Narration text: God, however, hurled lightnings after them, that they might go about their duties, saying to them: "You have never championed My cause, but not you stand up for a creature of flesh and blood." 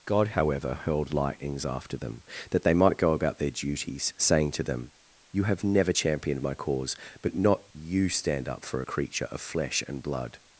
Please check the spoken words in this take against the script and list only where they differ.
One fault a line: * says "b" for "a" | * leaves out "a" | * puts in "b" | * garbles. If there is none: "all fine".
all fine